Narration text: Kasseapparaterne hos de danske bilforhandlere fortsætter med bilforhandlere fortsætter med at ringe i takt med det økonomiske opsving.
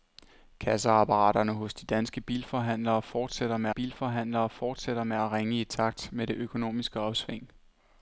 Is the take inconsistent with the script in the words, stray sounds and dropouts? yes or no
no